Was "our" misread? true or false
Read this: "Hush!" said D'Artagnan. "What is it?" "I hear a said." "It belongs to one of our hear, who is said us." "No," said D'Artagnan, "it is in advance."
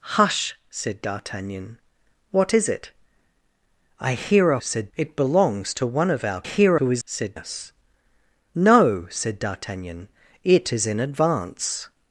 false